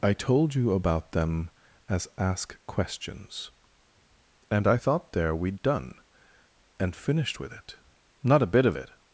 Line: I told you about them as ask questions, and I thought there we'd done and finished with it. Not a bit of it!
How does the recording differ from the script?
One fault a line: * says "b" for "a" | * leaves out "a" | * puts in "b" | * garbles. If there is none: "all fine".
all fine